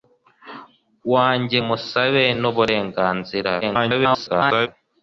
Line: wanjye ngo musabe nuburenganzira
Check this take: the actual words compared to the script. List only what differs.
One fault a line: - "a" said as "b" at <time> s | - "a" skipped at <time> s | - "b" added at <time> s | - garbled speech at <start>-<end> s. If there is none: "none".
- "ngo" skipped at 1.6 s
- garbled speech at 3.6-4.7 s